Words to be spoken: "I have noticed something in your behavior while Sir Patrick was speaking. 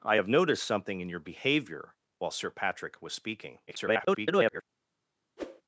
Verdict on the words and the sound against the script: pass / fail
fail